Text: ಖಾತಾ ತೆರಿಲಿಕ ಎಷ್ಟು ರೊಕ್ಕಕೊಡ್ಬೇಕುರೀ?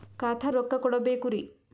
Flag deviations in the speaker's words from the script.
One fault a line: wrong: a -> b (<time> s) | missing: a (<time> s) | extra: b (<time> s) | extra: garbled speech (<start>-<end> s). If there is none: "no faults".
missing: ತೆರಿಲಿಕ ಎಷ್ಟು (0.5 s)